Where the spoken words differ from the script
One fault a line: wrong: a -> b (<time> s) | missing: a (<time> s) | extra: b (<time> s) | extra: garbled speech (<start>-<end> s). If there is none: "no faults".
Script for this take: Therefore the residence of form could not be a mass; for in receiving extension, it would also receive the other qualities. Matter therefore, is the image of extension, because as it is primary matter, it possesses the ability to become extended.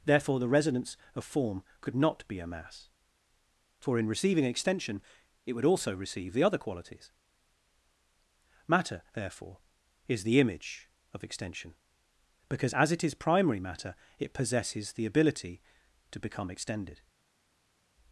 no faults